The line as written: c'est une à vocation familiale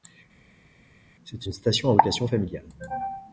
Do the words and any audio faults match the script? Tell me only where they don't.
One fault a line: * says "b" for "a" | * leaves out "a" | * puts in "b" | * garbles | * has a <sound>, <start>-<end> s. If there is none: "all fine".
* puts in "station"